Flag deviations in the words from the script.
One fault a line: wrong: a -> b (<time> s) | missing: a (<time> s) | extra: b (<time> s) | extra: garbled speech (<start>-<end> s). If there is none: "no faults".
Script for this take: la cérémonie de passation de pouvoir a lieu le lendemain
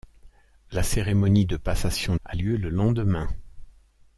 missing: de pouvoir (2.1 s)